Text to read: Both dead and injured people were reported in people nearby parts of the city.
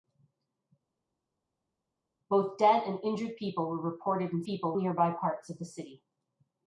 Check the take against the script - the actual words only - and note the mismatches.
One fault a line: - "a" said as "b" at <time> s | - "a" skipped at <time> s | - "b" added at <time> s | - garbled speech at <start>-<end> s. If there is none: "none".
none